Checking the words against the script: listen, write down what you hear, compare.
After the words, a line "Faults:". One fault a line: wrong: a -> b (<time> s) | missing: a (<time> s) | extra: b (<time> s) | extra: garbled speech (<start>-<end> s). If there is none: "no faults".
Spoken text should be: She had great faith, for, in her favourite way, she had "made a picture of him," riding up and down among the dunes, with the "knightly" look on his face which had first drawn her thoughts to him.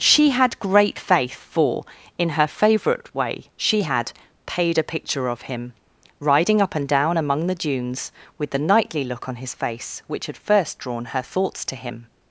She had great faith, for, in her favourite way, she had "paid a picture of him," riding up and down among the dunes, with the "knightly" look on his face which had first drawn her thoughts to him.
Faults:
wrong: made -> paid (4.5 s)